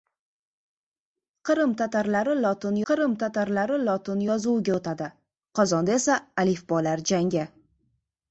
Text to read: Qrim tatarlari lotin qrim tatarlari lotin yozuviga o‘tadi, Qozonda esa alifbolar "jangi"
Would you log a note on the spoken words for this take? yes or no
no